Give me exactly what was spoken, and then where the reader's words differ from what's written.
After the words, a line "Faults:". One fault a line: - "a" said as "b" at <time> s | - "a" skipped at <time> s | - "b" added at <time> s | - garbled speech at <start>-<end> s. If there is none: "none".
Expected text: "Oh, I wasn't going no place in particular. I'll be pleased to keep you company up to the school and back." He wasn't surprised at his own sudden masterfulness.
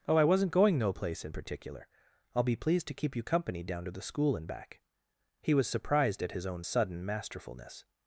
"Oh, I wasn't going no place in particular. I'll be pleased to keep you company down to the school and back." He was surprised at his own sudden masterfulness.
Faults:
- "up" said as "down" at 3.6 s
- "wasn't" said as "was" at 5.5 s